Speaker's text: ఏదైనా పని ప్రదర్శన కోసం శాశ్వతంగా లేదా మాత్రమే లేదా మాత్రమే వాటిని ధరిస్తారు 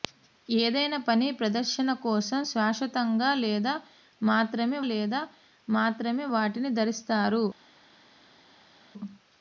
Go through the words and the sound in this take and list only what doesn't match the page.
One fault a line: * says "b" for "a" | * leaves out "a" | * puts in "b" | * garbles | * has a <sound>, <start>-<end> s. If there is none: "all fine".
all fine